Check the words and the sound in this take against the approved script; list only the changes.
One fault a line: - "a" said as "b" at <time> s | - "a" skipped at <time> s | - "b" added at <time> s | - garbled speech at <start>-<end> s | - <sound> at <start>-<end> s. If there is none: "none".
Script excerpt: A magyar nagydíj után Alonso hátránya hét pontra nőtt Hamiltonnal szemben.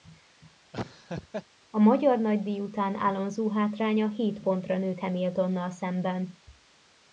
- laugh at 0.7-1.5 s